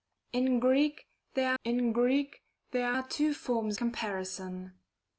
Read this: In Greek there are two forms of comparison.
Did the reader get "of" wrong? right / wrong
wrong